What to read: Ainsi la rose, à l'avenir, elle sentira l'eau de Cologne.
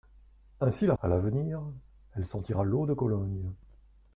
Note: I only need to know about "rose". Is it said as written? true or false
false